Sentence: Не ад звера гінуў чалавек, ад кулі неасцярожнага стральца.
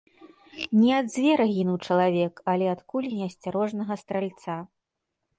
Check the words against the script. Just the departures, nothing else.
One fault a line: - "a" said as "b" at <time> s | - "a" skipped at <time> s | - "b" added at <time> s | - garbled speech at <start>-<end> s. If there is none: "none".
- "але" added at 2.5 s